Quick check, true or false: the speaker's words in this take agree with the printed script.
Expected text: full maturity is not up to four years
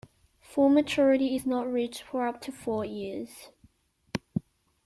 false